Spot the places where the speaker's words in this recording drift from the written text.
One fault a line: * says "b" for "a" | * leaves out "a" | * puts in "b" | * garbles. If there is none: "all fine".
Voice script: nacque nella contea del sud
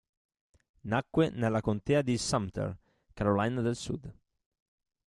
* puts in "di sumter carolina"